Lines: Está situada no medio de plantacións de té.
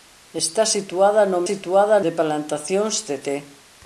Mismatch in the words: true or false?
true